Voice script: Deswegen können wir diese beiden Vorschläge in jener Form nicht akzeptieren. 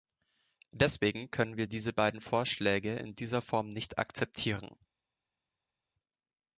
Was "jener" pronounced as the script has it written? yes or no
no